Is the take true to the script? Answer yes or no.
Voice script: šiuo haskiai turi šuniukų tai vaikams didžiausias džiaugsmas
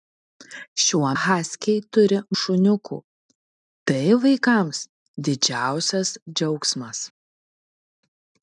yes